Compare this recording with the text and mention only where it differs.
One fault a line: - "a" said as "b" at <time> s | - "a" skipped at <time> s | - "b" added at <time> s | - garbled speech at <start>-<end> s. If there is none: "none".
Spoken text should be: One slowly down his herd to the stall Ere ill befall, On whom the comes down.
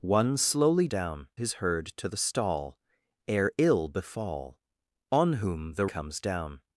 none